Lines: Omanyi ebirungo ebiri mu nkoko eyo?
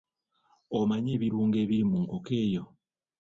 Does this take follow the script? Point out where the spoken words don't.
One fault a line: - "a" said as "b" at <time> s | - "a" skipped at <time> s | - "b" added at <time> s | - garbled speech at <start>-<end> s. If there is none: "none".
none